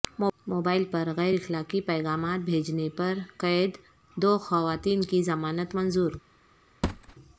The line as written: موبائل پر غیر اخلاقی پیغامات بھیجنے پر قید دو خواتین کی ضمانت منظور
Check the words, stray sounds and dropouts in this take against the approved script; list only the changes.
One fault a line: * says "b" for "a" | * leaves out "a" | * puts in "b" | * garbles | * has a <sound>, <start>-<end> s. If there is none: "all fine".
* has a thud, 6.8-7.2 s